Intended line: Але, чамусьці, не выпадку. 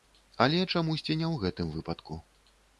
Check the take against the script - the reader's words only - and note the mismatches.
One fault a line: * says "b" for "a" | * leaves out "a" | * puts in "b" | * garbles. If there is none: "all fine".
* puts in "ў гэтым"